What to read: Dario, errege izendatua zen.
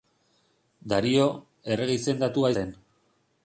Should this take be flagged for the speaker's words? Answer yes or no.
no